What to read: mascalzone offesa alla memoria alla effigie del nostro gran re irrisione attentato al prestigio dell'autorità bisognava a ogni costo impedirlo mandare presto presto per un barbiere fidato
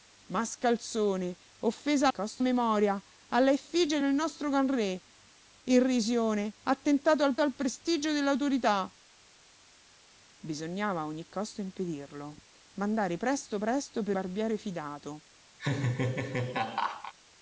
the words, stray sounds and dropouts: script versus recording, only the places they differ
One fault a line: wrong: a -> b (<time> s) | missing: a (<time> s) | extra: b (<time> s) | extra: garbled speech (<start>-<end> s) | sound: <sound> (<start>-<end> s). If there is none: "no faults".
wrong: alla -> costo (2.1 s)
extra: al (7.4 s)
missing: un (14.2 s)
sound: laugh (15.6-17.1 s)